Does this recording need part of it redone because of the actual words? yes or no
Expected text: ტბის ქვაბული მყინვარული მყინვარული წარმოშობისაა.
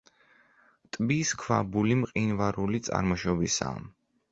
yes